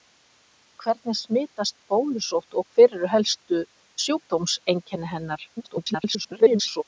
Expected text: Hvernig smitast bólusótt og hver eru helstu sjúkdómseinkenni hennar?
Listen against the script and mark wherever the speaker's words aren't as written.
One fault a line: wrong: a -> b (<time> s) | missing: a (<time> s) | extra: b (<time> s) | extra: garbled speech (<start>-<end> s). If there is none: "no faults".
extra: garbled speech (5.6-6.8 s)